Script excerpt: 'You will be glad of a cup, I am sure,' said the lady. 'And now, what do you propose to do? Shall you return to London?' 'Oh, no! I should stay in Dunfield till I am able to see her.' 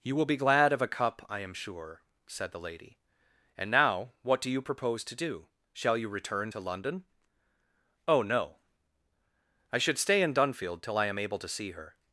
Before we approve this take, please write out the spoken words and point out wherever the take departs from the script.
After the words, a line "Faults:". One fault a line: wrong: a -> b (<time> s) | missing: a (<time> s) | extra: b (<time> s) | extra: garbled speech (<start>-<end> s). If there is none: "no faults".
'You will be glad of a cup, I am sure,' said the lady. 'And now, what do you propose to do? Shall you return to London?' 'Oh, no! I should stay in Dunfield till I am able to see her.'
Faults:
no faults